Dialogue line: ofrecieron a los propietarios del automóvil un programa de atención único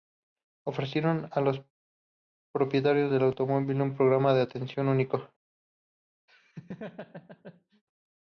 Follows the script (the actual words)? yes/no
yes